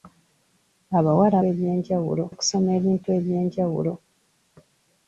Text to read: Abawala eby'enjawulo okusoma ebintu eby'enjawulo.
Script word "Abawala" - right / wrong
right